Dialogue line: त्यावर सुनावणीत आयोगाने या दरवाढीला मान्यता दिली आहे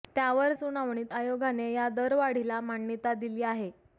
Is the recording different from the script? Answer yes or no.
no